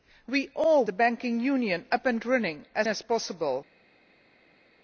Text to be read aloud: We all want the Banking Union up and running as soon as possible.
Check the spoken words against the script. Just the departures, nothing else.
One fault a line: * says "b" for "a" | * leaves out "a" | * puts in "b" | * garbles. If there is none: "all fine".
* leaves out "want"
* leaves out "soon"